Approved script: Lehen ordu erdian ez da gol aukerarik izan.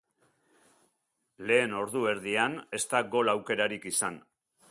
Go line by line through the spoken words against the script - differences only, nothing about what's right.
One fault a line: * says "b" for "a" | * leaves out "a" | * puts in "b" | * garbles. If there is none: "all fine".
all fine